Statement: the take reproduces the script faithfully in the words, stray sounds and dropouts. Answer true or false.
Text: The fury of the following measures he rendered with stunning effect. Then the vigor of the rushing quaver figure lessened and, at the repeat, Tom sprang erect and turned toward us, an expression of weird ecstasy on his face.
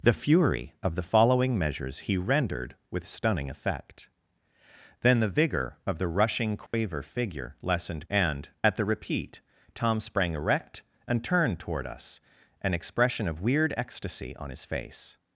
false